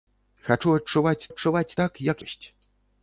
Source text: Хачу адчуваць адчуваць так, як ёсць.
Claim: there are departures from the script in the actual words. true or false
false